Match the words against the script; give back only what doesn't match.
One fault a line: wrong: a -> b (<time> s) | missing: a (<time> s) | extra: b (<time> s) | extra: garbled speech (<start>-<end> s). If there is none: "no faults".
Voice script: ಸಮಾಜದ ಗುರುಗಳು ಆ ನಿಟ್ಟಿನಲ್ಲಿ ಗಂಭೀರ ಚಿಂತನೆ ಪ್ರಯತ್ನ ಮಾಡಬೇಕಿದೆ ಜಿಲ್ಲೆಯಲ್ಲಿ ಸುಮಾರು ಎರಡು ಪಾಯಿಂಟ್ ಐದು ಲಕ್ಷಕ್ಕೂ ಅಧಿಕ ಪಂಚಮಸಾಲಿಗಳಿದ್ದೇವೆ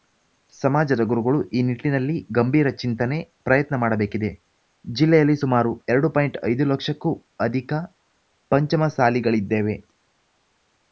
wrong: ಆ -> ಈ (1.5 s)